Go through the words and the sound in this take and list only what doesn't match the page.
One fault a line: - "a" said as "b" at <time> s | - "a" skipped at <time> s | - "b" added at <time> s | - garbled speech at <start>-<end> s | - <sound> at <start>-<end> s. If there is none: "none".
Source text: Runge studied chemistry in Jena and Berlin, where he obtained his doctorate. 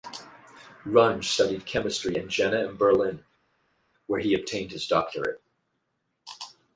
none